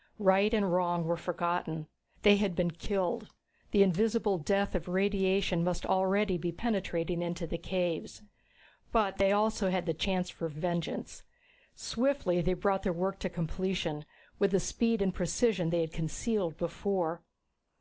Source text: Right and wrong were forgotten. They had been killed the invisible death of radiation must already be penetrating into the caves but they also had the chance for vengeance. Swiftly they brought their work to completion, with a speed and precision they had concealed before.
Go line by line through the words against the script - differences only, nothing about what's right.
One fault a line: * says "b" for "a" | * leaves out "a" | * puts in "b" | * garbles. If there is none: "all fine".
all fine